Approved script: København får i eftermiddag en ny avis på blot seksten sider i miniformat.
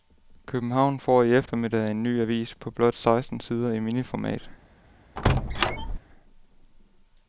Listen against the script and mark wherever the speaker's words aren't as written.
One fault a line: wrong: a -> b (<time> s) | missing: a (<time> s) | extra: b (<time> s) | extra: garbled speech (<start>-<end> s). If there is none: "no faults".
no faults